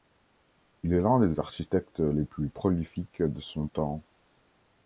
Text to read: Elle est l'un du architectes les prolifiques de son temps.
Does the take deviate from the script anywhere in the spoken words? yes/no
yes